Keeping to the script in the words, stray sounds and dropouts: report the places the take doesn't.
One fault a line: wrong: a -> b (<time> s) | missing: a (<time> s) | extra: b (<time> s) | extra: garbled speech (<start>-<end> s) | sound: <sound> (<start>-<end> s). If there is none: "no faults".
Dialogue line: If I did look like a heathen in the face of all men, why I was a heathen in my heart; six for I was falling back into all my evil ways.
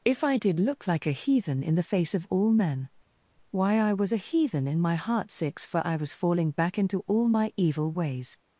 no faults